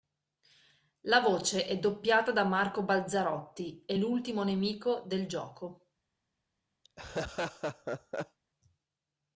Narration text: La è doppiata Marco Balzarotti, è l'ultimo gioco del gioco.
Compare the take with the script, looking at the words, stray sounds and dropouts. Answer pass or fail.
fail